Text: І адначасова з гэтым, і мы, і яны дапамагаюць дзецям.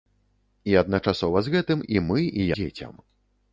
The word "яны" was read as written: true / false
false